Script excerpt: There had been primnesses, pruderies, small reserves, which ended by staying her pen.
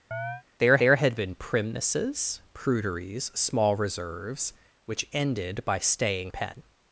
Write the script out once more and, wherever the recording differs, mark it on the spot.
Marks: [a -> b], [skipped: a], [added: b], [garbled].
There [added: there] had been primnesses, pruderies, small reserves, which ended by staying [skipped: her] pen.